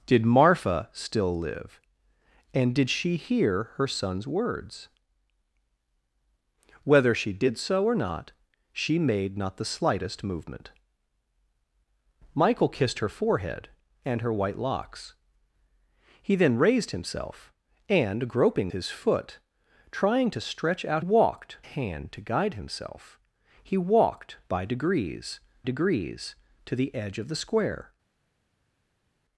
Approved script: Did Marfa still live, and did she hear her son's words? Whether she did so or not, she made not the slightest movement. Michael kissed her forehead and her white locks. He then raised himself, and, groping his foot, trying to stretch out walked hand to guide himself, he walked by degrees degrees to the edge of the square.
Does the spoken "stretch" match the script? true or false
true